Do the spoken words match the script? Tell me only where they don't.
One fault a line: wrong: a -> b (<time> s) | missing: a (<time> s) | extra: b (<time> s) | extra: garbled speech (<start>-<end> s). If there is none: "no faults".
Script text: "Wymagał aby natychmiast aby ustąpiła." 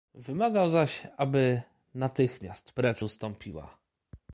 extra: zaś (0.7 s)
wrong: aby -> precz (2.7 s)